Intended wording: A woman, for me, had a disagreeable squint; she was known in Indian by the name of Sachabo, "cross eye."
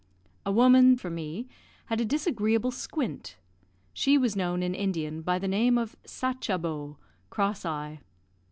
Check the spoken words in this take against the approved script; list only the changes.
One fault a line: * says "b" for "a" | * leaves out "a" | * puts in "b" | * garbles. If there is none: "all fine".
all fine